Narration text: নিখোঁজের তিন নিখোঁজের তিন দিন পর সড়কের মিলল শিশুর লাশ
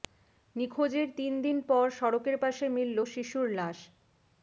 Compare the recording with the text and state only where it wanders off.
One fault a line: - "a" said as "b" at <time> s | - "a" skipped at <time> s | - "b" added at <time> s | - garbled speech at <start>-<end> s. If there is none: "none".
- "নিখোঁজের তিন" skipped at 1.3 s
- "পাশে" added at 2.4 s